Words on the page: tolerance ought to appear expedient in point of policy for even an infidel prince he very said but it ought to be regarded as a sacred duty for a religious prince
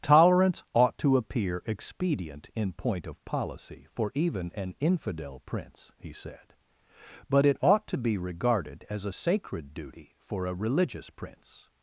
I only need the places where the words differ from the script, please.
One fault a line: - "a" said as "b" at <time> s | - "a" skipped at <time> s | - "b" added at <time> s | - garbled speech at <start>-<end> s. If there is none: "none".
- "very" skipped at 6.1 s